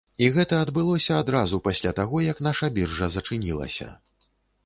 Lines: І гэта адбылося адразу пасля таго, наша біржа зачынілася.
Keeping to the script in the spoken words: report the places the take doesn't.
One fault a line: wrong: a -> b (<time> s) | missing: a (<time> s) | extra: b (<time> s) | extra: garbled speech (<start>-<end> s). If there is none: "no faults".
extra: як (2.3 s)